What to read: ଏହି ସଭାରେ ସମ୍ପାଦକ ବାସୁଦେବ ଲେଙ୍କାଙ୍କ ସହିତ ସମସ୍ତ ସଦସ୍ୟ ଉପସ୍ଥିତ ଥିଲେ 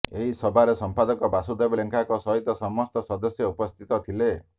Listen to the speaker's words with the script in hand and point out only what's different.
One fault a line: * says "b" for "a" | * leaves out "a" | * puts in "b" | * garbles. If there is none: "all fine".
all fine